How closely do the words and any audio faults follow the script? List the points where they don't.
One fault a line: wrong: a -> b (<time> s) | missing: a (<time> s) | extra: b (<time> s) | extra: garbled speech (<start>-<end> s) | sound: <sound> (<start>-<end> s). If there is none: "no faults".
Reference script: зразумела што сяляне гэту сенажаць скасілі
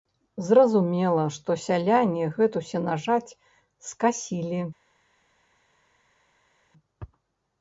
no faults